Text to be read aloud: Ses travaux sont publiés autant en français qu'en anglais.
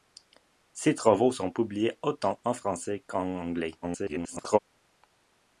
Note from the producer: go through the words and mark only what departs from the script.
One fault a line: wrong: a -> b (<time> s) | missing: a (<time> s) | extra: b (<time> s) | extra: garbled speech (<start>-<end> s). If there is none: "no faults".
extra: garbled speech (3.8-4.6 s)